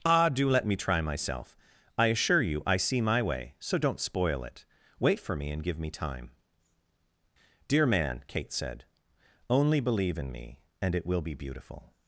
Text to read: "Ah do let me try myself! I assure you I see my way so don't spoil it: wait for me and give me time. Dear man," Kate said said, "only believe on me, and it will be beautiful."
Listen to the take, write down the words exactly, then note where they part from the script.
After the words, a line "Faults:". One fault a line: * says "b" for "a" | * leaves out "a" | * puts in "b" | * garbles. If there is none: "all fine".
"Ah do let me try myself! I assure you I see my way so don't spoil it: wait for me and give me time. Dear man," Kate said, "only believe in me, and it will be beautiful."
Faults:
* leaves out "said"
* says "in" for "on"